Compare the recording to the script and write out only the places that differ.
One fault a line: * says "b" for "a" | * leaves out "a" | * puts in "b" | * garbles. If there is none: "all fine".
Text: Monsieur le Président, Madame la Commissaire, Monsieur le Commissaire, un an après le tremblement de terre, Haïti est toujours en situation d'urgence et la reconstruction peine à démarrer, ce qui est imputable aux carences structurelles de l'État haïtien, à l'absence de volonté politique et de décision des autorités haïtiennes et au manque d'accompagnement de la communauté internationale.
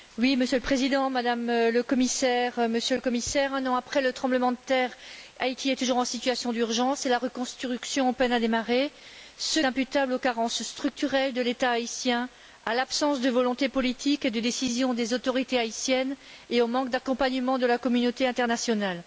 * leaves out "qui est"